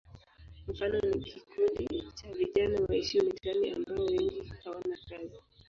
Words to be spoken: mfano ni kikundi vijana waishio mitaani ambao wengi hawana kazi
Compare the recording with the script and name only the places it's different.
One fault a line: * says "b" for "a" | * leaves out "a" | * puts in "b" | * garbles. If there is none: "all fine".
* puts in "cha"